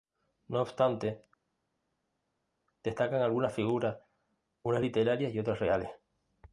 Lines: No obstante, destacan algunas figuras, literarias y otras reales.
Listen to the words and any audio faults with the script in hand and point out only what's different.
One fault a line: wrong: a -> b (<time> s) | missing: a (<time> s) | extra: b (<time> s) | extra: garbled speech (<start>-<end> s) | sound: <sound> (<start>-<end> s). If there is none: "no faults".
extra: unas (4.6 s)